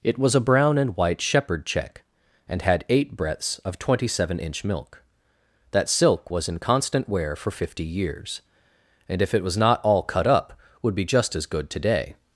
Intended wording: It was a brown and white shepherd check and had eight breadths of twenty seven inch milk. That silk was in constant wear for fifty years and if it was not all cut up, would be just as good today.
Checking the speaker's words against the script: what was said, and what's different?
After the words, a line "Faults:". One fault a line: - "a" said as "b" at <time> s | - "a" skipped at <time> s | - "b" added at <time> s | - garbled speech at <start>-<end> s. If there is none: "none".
It was a brown and white shepherd check and had eight breadths of twenty seven inch milk. That silk was in constant wear for fifty years and if it was not all cut up, would be just as good today.
Faults:
none